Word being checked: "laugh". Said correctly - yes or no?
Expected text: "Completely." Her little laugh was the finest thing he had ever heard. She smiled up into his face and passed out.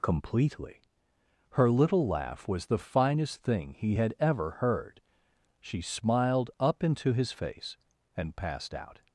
yes